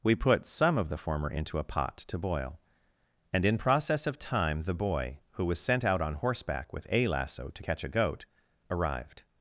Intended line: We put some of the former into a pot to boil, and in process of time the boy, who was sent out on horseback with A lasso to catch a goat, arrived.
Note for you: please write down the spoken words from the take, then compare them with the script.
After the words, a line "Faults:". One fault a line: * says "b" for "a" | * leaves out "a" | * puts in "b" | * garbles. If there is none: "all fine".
We put some of the former into a pot to boil, and in process of time the boy, who was sent out on horseback with A lasso to catch a goat, arrived.
Faults:
all fine